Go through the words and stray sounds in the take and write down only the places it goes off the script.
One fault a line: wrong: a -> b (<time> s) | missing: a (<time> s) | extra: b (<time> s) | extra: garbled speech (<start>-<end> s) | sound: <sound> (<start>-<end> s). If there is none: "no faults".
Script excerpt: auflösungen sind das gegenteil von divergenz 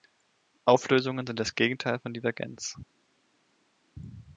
no faults